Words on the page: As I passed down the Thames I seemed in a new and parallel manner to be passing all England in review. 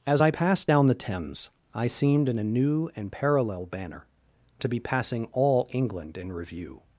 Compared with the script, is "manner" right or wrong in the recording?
wrong